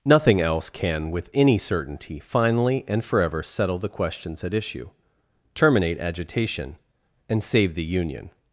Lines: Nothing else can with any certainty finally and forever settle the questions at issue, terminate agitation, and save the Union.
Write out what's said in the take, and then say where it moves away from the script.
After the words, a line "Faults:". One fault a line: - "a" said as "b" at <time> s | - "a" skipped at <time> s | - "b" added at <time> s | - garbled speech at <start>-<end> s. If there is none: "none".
Nothing else can with any certainty finally and forever settle the questions at issue, terminate agitation, and save the Union.
Faults:
none